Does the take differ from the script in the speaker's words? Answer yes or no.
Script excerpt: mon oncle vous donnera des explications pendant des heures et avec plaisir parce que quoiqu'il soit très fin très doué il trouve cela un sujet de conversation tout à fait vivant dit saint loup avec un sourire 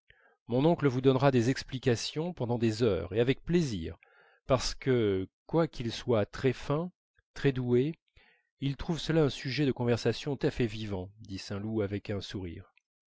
yes